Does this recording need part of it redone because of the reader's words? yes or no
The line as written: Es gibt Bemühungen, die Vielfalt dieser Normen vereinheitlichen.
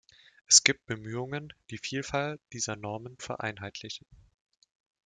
no